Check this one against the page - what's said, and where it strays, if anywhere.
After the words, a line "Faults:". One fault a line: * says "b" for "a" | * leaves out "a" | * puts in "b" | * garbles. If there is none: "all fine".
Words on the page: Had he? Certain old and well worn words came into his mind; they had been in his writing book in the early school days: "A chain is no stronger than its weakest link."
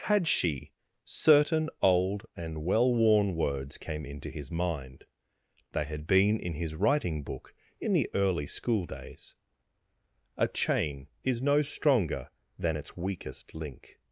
Had she? Certain old and well worn words came into his mind; they had been in his writing book in the early school days: "A chain is no stronger than its weakest link."
Faults:
* says "she" for "he"